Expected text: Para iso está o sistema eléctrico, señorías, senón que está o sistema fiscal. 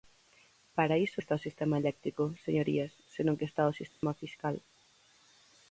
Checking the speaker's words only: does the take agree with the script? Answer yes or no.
yes